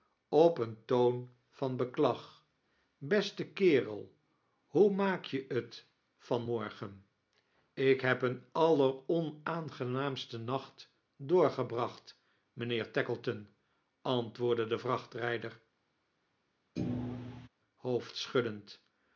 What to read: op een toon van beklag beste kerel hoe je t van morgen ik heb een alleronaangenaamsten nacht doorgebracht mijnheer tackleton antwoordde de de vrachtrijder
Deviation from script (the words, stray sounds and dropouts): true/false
true